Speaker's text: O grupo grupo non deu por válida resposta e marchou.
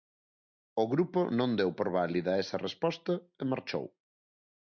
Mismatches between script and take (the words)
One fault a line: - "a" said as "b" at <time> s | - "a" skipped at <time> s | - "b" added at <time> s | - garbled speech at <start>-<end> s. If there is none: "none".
- "grupo" skipped at 1.2 s
- "esa" added at 2.4 s